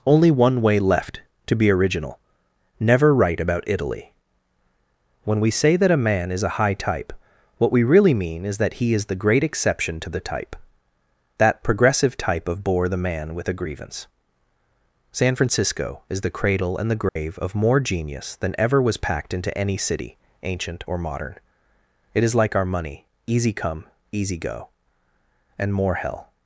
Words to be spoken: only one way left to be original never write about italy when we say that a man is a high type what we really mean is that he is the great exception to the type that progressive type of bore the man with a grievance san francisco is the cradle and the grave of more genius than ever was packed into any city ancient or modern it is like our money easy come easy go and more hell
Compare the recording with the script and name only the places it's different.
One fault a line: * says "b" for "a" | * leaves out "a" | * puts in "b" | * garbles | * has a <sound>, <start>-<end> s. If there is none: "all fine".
* has a dropout, 17.1-17.2 s